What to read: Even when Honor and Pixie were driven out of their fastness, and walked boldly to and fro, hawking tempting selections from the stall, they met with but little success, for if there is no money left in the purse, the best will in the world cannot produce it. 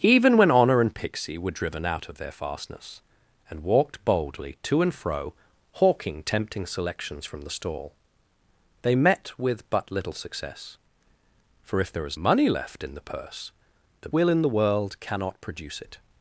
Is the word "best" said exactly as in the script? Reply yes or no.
no